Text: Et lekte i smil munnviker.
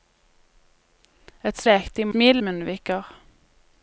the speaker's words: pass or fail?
pass